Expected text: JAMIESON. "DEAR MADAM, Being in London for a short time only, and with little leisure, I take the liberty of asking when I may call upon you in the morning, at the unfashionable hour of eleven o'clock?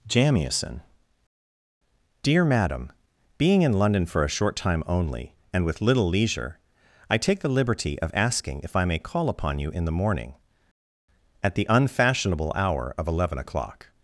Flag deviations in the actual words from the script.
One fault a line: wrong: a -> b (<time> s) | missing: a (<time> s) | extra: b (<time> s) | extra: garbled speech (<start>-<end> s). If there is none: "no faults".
wrong: when -> if (8.6 s)